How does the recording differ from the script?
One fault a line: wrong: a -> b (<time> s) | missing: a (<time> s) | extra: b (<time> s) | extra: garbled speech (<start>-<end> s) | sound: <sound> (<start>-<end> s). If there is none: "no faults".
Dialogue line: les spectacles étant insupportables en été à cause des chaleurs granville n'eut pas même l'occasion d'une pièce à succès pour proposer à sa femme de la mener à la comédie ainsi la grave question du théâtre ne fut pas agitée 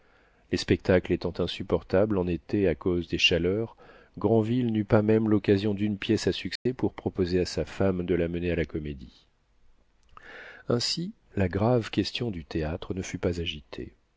sound: dropout (6.6-6.7 s)